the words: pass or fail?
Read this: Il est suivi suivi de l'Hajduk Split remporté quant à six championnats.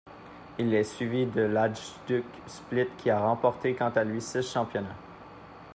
fail